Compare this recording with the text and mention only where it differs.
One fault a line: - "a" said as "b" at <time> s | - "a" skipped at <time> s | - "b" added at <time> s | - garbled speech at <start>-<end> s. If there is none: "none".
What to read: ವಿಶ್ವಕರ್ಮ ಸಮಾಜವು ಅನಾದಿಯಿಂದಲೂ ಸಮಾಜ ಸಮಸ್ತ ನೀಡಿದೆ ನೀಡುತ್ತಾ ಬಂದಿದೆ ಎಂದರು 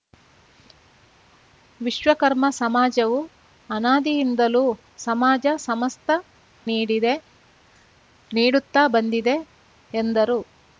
none